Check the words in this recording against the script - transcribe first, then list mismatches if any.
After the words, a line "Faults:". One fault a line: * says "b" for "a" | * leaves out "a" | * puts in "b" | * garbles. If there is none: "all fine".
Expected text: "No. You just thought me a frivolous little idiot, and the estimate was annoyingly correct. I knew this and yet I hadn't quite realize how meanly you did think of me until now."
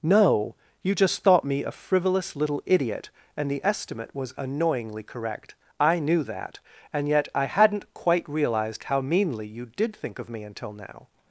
"No. You just thought me a frivolous little idiot, and the estimate was annoyingly correct. I knew that and yet I hadn't quite realized how meanly you did think of me until now."
Faults:
* says "that" for "this"
* says "realized" for "realize"